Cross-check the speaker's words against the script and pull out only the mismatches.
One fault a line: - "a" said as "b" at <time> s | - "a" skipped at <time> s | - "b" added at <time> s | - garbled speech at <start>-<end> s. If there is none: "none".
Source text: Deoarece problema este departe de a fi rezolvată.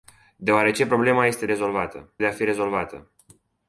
- "departe" said as "rezolvată" at 1.5 s